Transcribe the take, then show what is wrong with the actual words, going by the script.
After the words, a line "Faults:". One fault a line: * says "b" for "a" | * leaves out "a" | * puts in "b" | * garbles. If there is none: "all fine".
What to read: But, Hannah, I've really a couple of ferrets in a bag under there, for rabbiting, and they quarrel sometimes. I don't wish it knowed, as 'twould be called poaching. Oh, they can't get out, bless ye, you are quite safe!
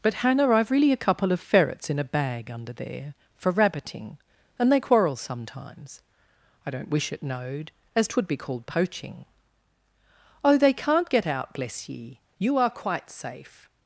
But, Hannah, I've really a couple of ferrets in a bag under there, for rabbiting, and they quarrel sometimes. I don't wish it knowed, as 'twould be called poaching. Oh, they can't get out, bless ye, you are quite safe!
Faults:
all fine